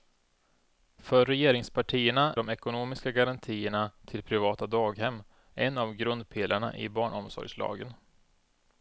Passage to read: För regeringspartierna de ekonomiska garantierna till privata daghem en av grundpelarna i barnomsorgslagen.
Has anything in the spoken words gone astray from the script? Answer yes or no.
no